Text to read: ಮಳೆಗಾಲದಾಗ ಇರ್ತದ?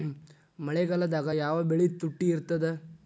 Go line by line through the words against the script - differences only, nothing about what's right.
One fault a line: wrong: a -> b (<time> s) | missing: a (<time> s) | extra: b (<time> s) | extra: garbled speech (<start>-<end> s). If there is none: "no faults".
extra: ಯಾವ ಬೆಳಿ ತುಟ್ಟಿ (1.4 s)